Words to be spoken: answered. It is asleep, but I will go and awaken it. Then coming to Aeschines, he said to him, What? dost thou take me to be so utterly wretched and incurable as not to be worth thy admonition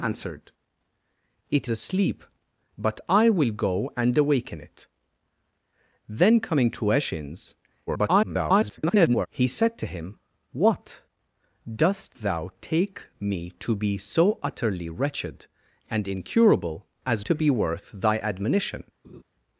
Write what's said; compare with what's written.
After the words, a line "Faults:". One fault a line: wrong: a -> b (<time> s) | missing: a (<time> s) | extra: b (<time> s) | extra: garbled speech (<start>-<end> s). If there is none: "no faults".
answered. It asleep, but I will go and awaken it. Then coming to Aeschines, [garbled] he said to him, What? dost thou take me to be so utterly wretched and incurable as to be worth thy admonition
Faults:
missing: is (1.7 s)
extra: garbled speech (7.9-9.3 s)
missing: not (17.3 s)